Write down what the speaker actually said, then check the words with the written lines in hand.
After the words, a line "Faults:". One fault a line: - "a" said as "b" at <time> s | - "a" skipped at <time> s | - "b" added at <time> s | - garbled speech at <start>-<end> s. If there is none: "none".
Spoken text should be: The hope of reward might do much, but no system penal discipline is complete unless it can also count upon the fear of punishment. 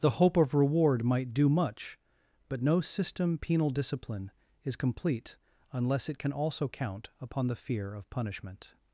The hope of reward might do much, but no system penal discipline is complete unless it can also count upon the fear of punishment.
Faults:
none